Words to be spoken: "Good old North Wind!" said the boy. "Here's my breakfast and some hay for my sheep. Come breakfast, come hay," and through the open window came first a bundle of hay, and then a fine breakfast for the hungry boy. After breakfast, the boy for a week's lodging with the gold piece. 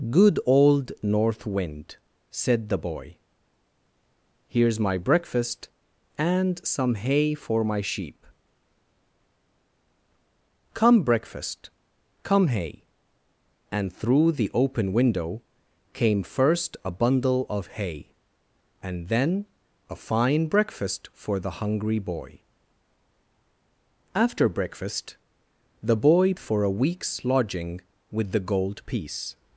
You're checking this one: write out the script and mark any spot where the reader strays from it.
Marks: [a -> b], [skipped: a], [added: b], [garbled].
"Good old North Wind!" said the boy. "Here's my breakfast and some hay for my sheep. Come breakfast, come hay," and through the open window came first a bundle of hay, and then a fine breakfast for the hungry boy. After breakfast, the boy for a week's lodging with the gold piece.